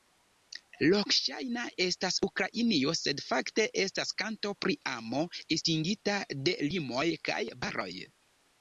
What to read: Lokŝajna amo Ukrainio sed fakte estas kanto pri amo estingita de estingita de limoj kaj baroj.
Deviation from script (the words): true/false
true